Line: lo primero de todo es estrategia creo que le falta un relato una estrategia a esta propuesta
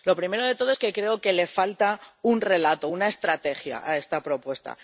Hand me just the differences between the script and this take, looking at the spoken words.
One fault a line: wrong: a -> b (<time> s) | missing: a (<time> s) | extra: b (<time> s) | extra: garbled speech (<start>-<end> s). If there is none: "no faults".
wrong: estrategia -> que (0.8 s)